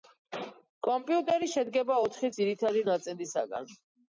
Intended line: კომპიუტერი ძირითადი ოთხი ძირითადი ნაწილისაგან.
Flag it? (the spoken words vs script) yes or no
yes